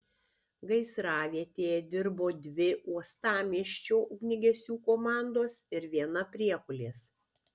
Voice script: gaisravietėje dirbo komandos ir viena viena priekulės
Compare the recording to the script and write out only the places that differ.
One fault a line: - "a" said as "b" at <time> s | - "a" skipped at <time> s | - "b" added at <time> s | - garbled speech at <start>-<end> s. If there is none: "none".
- "dvi uostamiesčio ugniagesių" added at 2.5 s
- "viena" skipped at 6.3 s